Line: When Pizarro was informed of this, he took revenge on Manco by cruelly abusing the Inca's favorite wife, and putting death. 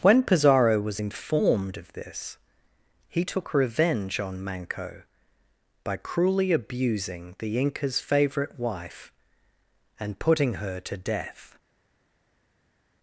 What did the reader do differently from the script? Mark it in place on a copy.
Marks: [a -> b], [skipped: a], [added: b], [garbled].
When Pizarro was informed of this, he took revenge on Manco by cruelly abusing the Inca's favorite wife, and putting [added: her to] death.